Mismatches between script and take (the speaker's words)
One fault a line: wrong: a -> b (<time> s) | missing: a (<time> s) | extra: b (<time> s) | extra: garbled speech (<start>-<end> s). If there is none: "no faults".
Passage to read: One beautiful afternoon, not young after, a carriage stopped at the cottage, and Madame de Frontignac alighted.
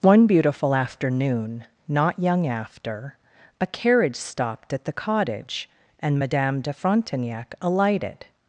no faults